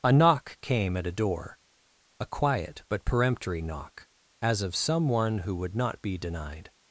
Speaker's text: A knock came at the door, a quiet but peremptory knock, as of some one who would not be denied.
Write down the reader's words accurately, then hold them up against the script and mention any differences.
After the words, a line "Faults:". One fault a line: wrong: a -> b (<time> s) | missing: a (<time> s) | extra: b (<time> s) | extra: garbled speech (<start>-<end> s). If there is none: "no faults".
A knock came at a door, a quiet but peremptory knock, as of some one who would not be denied.
Faults:
wrong: the -> a (1.1 s)